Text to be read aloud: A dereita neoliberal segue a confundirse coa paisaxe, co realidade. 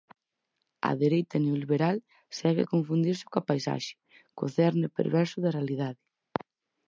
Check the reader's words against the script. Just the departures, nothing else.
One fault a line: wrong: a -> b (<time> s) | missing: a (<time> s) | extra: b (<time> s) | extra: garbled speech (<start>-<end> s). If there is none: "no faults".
extra: cerne perverso da (4.6 s)